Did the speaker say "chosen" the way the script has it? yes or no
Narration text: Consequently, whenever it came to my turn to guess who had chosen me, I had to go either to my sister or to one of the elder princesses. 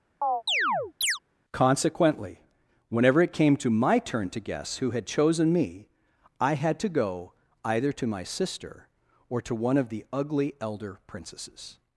yes